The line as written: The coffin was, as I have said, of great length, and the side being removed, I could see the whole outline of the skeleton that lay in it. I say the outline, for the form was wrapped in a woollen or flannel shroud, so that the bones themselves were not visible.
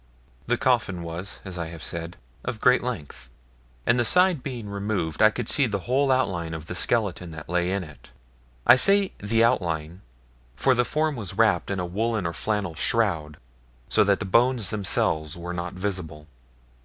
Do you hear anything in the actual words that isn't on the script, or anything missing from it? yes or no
no